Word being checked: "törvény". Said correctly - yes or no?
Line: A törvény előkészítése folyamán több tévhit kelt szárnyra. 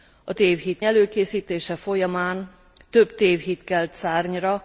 no